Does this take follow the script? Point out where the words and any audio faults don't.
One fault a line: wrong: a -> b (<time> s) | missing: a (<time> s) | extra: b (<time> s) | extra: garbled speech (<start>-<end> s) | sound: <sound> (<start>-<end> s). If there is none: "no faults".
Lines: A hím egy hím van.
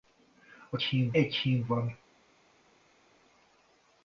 no faults